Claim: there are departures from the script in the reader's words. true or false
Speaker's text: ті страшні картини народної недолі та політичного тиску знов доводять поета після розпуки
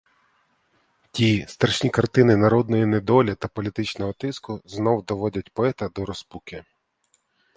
true